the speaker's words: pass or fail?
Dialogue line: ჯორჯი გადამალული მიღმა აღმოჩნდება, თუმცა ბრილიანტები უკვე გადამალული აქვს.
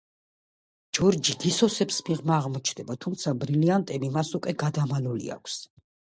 fail